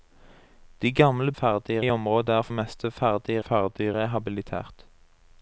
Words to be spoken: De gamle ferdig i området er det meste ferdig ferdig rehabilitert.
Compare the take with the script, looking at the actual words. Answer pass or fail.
pass